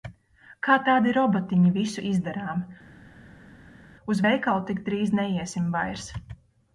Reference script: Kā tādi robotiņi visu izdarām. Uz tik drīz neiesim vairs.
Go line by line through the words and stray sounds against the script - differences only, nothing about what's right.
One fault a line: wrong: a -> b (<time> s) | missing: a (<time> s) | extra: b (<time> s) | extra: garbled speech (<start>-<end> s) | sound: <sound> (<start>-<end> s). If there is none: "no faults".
extra: veikalu (4.3 s)